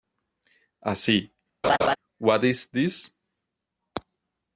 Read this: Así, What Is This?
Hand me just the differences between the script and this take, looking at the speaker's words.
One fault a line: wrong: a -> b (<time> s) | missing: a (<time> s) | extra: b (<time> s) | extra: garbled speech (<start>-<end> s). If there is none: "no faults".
no faults